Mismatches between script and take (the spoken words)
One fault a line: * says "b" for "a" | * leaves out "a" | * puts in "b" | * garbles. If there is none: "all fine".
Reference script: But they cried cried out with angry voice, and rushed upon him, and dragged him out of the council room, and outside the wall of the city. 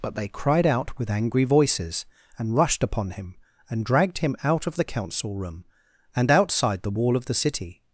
* leaves out "cried"
* says "voices" for "voice"